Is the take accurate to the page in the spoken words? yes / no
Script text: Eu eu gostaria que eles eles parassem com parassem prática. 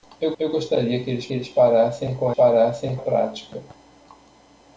yes